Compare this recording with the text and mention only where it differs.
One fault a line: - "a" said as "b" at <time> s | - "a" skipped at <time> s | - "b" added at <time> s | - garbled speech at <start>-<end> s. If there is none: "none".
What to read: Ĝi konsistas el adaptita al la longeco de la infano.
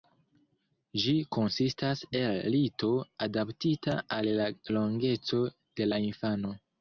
- "lito" added at 2.5 s